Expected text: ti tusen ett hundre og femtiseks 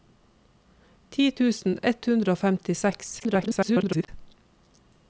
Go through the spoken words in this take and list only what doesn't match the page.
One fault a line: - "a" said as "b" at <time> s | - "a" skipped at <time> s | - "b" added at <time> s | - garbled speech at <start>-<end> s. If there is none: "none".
- garbled speech at 3.2-4.1 s